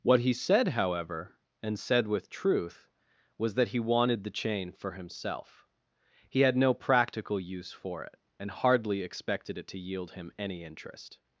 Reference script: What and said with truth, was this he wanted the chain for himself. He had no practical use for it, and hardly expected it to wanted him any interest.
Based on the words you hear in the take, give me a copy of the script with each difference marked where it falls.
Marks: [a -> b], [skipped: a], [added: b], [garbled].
What [added: he said however] and said with truth, was [this -> that] he wanted the chain for himself. He had no practical use for it, and hardly expected it to [wanted -> yield] him any interest.